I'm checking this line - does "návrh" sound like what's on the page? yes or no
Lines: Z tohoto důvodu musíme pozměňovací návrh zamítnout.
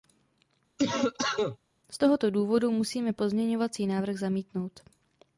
yes